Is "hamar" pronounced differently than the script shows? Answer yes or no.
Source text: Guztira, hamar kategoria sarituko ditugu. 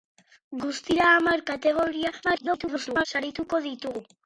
no